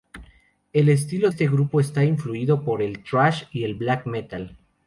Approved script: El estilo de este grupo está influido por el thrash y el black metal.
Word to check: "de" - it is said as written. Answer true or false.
false